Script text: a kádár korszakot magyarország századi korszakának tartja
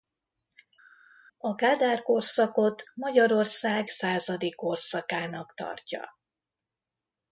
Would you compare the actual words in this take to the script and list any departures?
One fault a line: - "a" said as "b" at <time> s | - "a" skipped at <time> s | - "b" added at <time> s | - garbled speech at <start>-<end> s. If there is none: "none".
none